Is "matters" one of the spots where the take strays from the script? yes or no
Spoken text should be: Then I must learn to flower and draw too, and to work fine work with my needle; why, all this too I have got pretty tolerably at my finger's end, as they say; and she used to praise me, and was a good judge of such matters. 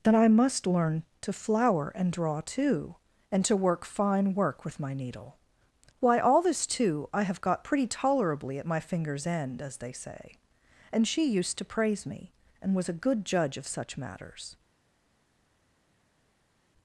no